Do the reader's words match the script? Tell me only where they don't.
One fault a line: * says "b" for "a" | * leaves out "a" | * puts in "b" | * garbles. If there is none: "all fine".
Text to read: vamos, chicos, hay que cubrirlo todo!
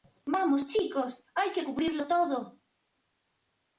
all fine